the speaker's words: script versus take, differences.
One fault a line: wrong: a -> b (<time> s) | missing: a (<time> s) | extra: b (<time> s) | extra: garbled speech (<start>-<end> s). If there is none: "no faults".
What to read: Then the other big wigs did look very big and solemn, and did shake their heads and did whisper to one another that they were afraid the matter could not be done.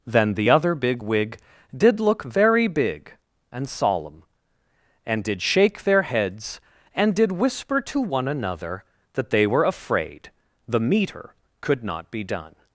wrong: wigs -> wig (1.0 s)
wrong: matter -> meter (10.8 s)